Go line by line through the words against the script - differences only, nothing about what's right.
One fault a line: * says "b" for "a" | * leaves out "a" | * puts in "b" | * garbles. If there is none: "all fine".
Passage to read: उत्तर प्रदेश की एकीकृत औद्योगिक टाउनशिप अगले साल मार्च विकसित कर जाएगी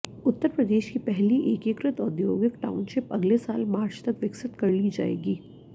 * puts in "पहली"
* puts in "तक"
* puts in "ली"